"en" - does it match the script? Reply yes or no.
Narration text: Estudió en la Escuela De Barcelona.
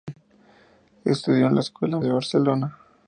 yes